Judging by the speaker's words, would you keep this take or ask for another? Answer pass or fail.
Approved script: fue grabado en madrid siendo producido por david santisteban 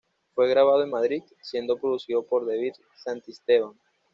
pass